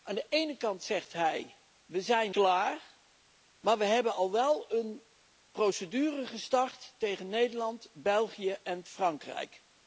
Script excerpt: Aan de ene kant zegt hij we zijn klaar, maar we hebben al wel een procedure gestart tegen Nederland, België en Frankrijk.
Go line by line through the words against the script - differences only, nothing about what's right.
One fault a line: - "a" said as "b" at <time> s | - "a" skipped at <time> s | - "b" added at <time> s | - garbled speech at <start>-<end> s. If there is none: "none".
none